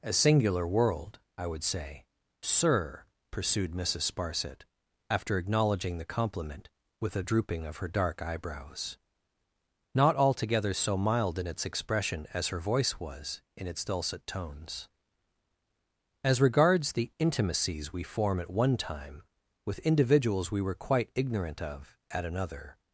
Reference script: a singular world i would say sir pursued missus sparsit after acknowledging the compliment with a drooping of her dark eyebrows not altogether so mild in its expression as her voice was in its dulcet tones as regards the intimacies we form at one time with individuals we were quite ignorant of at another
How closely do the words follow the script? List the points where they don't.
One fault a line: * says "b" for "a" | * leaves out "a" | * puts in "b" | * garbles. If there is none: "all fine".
all fine